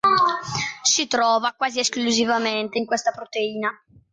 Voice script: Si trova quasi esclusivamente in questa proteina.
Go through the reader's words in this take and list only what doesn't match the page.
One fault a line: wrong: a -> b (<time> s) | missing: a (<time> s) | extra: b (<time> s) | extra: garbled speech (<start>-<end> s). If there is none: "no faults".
no faults